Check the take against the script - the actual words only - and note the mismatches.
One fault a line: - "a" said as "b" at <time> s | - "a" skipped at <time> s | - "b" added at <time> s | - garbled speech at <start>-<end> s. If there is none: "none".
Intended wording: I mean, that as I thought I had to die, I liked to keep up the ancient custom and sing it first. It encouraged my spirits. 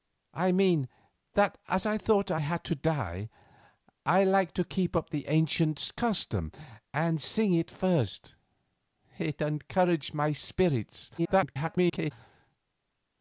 - garbled speech at 11.2-12.1 s